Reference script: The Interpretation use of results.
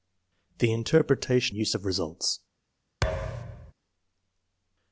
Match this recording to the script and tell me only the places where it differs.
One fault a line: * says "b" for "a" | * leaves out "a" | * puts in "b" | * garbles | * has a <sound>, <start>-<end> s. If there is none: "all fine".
* has a thud, 3.0-3.7 s